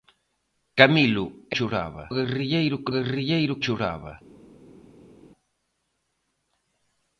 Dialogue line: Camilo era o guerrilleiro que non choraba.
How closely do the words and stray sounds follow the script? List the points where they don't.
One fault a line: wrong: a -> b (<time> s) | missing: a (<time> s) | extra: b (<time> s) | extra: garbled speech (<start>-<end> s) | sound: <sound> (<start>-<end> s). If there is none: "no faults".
wrong: era -> choraba (1.6 s)
wrong: non -> guerrilleiro (2.9 s)